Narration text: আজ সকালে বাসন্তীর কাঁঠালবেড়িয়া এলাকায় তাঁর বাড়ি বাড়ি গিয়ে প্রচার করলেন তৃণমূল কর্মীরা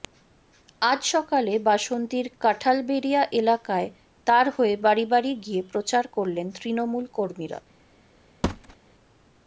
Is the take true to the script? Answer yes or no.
no